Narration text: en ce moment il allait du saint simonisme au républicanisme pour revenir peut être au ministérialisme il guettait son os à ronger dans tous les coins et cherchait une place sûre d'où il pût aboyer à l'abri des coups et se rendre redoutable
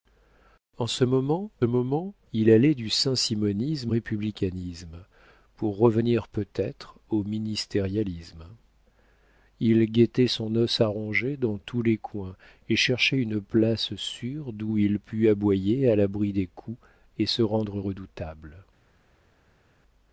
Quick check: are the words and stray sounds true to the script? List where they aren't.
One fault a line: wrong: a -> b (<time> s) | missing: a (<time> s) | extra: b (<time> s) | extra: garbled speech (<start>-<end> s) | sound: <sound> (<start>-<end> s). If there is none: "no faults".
extra: moment (1.6 s)
missing: au (3.9 s)